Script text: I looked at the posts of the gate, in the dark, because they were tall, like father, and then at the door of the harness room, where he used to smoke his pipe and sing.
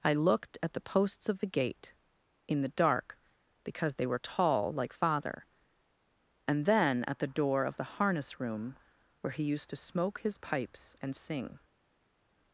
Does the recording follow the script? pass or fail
fail